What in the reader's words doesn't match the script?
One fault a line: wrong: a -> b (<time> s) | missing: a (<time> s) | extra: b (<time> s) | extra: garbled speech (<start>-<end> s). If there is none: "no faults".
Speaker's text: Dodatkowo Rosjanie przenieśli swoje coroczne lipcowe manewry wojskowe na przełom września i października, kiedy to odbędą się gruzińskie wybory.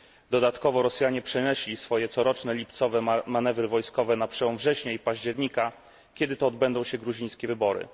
no faults